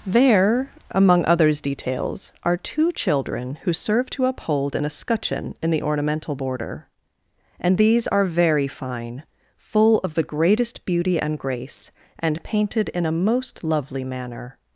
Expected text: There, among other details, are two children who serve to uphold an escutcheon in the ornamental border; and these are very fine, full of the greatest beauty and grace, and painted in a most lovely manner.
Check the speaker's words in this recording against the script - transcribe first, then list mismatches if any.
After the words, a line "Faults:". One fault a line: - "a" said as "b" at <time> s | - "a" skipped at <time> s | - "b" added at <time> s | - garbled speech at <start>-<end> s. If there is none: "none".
There, among others details, are two children who serve to uphold an escutcheon in the ornamental border; and these are very fine, full of the greatest beauty and grace, and painted in a most lovely manner.
Faults:
- "other" said as "others" at 1.2 s